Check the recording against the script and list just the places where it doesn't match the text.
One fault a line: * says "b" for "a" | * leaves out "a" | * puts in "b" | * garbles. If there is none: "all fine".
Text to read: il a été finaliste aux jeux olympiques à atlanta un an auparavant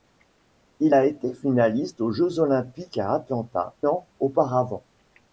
* leaves out "un"